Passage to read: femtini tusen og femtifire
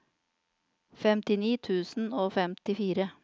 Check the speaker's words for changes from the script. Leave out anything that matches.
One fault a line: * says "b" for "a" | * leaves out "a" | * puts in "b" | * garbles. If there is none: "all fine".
all fine